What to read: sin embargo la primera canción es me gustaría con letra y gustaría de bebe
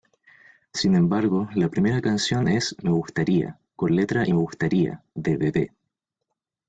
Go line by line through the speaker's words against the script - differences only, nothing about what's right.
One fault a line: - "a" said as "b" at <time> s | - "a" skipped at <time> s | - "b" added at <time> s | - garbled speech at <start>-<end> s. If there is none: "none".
none